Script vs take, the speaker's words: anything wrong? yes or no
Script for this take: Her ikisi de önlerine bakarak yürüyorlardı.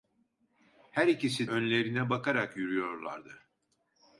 yes